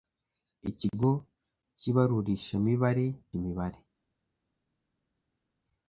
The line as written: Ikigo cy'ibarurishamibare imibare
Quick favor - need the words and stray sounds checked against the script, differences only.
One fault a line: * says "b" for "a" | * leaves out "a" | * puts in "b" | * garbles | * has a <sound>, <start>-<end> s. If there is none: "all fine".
all fine